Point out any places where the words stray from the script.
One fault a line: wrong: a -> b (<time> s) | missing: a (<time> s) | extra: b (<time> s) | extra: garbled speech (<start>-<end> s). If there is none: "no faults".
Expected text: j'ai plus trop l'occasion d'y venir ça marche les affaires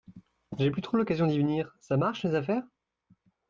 no faults